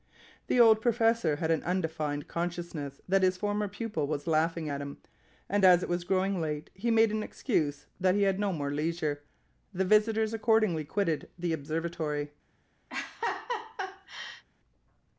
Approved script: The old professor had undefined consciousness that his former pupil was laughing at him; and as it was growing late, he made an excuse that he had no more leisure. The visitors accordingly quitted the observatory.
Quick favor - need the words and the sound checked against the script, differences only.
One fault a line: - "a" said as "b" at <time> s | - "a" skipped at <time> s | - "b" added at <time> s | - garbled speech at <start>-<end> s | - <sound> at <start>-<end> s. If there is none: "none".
- "an" added at 1.5 s
- laugh at 12.9-14.4 s